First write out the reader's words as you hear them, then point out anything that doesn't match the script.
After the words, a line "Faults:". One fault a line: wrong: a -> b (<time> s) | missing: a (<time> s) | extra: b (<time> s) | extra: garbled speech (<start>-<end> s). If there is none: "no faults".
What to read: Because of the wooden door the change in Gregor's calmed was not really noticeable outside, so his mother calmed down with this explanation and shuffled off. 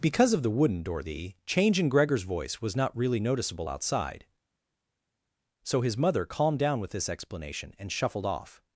Because of the wooden door the change in Gregor's voice was not really noticeable outside, so his mother calmed down with this explanation and shuffled off.
Faults:
wrong: calmed -> voice (2.2 s)